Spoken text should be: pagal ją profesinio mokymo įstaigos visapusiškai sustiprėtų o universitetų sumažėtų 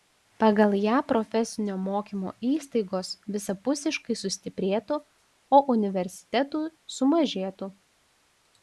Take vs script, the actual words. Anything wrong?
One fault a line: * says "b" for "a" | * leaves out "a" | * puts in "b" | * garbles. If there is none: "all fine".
all fine